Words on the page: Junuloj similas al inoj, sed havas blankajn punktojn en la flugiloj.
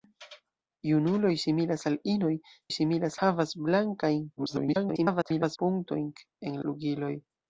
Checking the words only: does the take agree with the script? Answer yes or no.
no